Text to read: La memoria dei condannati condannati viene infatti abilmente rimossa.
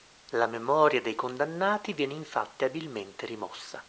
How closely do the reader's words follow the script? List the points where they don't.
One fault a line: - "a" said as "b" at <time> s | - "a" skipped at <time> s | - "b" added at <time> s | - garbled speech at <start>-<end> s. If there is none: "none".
- "condannati" skipped at 1.9 s